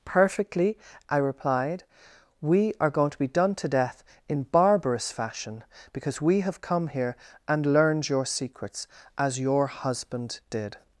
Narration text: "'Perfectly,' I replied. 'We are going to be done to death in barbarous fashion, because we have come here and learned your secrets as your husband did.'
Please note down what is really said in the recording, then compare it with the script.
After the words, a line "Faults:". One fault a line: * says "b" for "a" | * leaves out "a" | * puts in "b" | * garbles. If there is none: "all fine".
"'Perfectly,' I replied. 'We are going to be done to death in barbarous fashion, because we have come here and learned your secrets as your husband did.'
Faults:
all fine